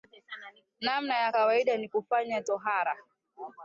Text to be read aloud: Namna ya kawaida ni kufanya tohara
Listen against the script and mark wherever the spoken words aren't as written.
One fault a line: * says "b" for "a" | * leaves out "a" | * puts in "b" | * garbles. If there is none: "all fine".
all fine